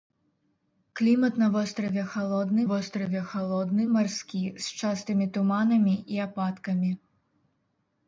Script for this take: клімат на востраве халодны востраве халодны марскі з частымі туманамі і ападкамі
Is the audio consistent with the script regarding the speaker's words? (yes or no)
yes